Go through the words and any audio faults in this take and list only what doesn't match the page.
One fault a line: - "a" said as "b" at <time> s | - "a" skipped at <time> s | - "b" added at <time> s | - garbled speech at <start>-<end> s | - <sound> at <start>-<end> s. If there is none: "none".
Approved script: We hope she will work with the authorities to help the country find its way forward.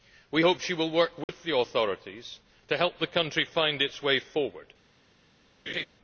- dropout at 1.2-1.3 s
- laugh at 5.7-5.9 s